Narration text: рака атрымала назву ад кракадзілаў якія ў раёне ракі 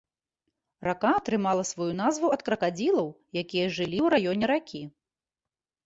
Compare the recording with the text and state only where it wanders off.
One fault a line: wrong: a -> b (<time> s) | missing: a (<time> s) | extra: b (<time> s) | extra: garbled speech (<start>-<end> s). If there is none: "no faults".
extra: сваю (1.7 s)
extra: жылі (3.8 s)